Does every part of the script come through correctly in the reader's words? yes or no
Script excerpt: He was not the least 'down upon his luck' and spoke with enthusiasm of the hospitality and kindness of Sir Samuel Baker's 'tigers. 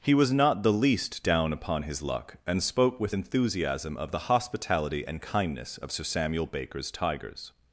yes